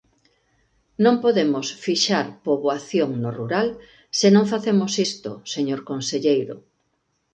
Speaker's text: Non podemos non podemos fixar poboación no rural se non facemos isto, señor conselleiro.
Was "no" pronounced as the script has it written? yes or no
yes